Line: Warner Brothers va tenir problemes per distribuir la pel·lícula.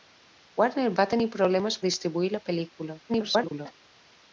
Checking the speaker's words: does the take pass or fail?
fail